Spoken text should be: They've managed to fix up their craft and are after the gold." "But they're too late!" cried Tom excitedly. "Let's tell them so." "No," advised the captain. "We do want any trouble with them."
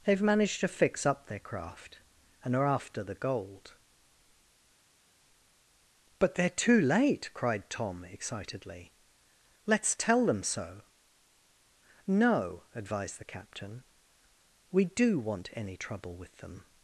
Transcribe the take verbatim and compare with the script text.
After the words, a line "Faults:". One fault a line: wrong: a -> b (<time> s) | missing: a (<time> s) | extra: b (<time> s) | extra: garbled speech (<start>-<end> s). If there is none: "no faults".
They've managed to fix up their craft and are after the gold." "But they're too late!" cried Tom excitedly. "Let's tell them so." "No," advised the captain. "We do want any trouble with them."
Faults:
no faults